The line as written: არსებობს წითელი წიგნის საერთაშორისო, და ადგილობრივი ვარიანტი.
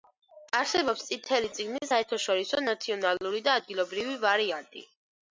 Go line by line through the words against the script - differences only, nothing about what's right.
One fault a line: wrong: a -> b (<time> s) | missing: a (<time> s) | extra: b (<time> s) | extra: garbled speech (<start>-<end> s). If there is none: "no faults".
extra: ნაციონალური (2.7 s)